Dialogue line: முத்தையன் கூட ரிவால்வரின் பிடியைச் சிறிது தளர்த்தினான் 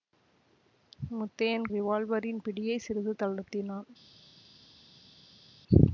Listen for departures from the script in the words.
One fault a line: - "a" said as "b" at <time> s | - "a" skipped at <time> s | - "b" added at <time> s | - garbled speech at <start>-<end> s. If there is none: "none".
- "கூட" skipped at 1.7 s